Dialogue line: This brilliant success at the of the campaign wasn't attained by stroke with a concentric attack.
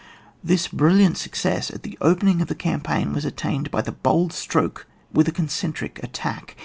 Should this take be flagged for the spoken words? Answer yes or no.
yes